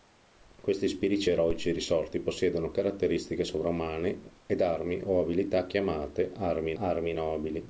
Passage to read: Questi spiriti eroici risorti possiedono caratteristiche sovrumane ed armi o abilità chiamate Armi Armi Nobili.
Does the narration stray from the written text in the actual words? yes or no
no